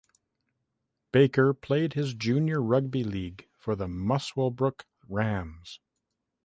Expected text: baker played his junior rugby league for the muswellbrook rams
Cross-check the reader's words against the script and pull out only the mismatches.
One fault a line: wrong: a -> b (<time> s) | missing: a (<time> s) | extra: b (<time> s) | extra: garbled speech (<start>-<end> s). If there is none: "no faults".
no faults